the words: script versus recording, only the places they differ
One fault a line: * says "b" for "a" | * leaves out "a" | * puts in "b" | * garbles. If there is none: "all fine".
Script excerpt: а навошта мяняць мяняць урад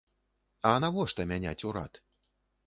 * leaves out "мяняць"